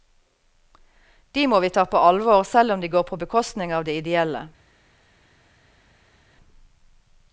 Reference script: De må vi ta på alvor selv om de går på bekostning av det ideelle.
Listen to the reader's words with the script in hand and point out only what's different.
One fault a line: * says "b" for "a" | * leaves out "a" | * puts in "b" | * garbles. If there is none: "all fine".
all fine